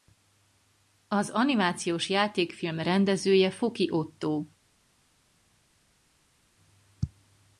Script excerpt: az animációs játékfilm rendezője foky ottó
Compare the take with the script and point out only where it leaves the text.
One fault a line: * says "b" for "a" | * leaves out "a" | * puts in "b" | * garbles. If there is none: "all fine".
all fine